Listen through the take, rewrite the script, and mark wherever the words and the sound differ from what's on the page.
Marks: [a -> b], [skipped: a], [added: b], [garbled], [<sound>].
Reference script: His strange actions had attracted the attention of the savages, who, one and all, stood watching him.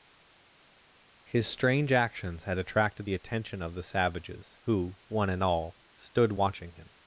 His strange actions had attracted the attention of the savages, who, one and all, stood watching him.